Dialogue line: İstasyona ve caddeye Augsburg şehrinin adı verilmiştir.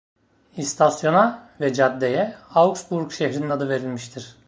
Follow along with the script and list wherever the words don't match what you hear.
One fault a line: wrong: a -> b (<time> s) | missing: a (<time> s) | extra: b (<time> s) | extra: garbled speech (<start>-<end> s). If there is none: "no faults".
no faults